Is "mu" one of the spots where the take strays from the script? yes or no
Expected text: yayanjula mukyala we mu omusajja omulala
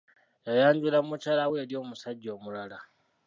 yes